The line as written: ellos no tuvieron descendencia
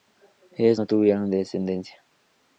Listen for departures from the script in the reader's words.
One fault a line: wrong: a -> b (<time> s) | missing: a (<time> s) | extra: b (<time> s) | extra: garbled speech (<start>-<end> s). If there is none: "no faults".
no faults